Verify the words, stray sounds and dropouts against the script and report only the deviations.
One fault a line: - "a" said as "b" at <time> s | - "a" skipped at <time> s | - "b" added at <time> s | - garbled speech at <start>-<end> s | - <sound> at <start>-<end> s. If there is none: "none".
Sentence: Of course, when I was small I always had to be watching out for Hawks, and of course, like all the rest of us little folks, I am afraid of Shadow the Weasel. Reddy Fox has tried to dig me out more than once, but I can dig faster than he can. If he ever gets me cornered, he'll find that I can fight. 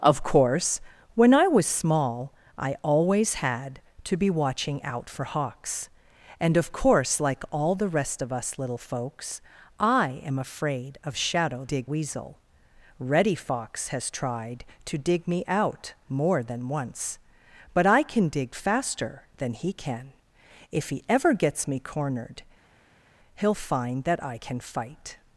- "the" said as "dig" at 11.6 s